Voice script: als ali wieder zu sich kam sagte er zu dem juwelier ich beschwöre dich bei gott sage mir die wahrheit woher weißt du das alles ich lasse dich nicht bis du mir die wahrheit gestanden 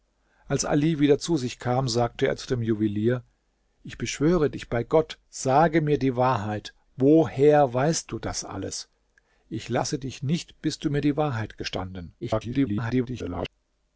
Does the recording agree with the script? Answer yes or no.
no